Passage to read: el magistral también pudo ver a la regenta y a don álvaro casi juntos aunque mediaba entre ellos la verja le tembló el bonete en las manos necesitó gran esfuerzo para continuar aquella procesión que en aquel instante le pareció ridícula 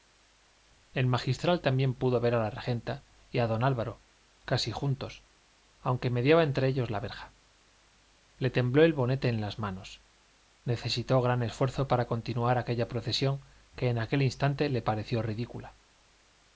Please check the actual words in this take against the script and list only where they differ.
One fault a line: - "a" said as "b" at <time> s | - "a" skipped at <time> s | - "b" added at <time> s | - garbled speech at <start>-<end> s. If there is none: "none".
none